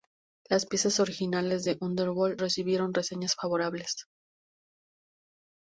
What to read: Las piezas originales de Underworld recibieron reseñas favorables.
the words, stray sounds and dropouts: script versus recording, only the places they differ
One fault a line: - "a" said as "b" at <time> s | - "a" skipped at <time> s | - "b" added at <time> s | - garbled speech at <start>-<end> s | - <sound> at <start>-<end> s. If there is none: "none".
none